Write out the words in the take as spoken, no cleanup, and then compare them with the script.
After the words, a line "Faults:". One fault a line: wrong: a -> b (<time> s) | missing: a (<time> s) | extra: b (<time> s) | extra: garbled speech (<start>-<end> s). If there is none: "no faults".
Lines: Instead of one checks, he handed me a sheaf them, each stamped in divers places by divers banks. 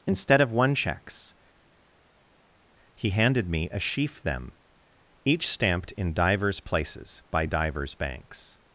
Instead of one checks, he handed me a sheaf them, each stamped in divers places by divers banks.
Faults:
no faults